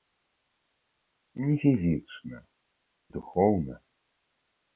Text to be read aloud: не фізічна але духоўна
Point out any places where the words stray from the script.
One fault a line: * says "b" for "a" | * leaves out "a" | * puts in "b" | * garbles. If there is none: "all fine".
* leaves out "але"